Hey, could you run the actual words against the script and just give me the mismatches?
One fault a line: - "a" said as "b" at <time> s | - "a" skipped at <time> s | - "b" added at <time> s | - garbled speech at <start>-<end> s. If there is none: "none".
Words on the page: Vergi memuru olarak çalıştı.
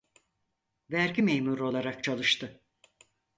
none